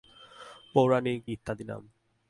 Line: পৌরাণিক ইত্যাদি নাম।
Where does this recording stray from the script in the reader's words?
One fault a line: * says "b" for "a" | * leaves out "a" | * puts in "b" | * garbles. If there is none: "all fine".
all fine